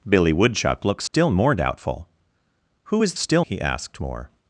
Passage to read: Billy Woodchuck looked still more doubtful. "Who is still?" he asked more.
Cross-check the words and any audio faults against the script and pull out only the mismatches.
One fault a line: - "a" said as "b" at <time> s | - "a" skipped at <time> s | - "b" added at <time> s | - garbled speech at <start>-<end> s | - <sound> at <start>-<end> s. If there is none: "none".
- dropout at 1.1-1.1 s